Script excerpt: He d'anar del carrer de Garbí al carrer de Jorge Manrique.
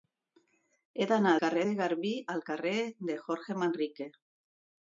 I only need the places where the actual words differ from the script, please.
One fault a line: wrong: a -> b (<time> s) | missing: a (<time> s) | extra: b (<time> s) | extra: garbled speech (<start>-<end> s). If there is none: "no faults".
missing: del (1.3 s)